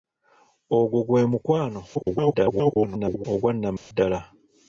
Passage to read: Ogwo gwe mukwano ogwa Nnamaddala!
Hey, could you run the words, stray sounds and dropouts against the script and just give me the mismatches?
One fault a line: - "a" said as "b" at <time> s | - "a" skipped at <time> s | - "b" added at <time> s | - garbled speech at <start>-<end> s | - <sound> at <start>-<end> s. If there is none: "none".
- garbled speech at 1.9-3.3 s
- dropout at 3.8-3.9 s